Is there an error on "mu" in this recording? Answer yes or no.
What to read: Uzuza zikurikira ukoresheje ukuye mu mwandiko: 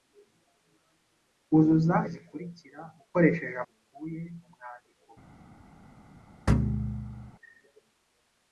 no